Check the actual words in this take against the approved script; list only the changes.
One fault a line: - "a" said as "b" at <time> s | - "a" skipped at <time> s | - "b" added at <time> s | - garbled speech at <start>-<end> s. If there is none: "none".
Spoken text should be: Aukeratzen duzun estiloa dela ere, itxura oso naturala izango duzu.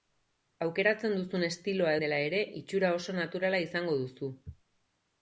none